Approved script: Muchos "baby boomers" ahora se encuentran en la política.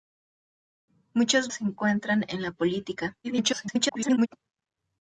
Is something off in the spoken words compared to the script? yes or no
yes